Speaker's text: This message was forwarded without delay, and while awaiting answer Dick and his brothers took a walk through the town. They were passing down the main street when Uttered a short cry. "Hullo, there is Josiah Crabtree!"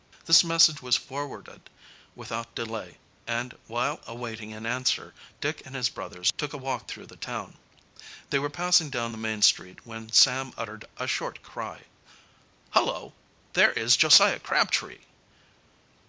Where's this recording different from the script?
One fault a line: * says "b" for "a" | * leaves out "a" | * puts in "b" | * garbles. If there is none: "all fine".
* puts in "an"
* puts in "Sam"